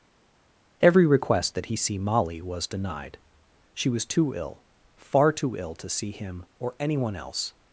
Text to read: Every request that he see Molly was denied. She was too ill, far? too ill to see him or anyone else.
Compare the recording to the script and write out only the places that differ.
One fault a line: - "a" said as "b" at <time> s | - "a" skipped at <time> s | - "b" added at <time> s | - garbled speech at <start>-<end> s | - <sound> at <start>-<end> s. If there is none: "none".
none